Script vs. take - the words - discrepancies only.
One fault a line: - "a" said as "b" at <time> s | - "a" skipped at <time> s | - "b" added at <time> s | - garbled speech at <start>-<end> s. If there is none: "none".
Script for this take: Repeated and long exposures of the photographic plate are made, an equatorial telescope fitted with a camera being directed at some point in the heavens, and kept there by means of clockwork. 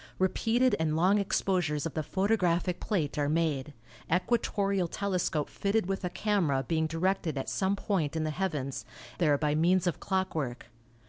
- "an" skipped at 3.8 s
- "and kept" skipped at 8.9 s